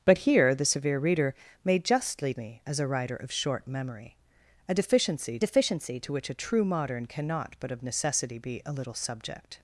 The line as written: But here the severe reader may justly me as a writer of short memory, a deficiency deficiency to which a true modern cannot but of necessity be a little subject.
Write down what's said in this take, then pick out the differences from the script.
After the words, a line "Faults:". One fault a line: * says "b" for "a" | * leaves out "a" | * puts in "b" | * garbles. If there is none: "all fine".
But here the severe reader may justly me as a writer of short memory, a deficiency deficiency to which a true modern cannot but of necessity be a little subject.
Faults:
all fine